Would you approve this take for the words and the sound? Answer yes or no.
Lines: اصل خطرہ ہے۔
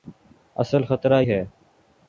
yes